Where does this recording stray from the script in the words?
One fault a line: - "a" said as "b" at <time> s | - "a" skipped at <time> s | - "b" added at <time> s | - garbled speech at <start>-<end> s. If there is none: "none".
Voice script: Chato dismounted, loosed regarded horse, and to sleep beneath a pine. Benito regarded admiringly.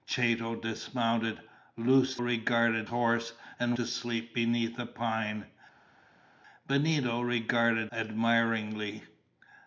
none